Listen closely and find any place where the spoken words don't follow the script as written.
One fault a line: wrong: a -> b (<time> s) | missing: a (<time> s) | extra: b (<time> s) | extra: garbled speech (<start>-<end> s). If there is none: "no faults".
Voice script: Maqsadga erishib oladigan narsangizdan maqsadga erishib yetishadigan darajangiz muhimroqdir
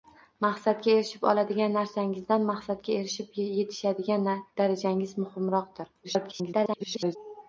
extra: garbled speech (6.0-7.2 s)